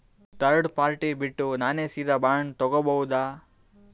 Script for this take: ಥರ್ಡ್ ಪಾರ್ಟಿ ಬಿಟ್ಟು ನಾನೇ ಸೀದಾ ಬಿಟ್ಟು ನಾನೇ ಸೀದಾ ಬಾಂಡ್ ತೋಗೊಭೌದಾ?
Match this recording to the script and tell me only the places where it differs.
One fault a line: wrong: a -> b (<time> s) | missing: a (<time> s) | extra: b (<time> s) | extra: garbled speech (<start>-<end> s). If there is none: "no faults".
missing: ಬಿಟ್ಟು ನಾನೇ ಸೀದಾ (2.2 s)